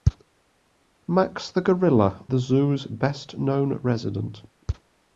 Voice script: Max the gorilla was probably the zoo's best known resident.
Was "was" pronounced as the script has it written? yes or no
no